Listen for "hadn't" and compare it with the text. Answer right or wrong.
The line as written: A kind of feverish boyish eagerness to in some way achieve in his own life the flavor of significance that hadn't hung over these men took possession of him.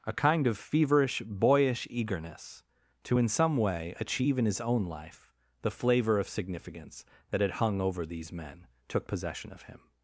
wrong